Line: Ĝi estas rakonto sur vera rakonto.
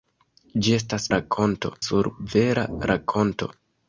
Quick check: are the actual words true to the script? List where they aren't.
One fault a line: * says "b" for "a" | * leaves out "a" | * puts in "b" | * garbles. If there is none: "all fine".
all fine